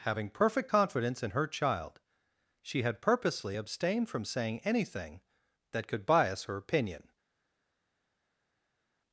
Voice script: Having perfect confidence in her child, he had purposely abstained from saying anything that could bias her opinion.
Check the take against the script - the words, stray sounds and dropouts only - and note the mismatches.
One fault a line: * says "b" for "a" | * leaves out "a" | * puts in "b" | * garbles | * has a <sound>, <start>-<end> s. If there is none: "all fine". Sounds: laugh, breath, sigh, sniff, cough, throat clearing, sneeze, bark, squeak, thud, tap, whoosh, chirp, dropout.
* says "she" for "he"